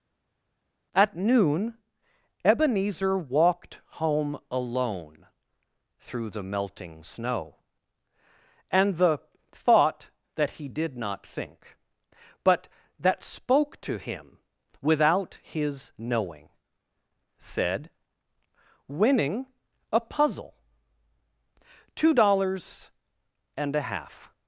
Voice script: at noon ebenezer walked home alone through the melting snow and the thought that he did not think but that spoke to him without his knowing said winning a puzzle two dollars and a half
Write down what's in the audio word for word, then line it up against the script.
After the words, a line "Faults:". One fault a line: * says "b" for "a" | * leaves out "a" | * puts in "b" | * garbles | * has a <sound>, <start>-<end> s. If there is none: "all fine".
at noon ebenezer walked home alone through the melting snow and the thought that he did not think but that spoke to him without his knowing said winning a puzzle two dollars and a half
Faults:
all fine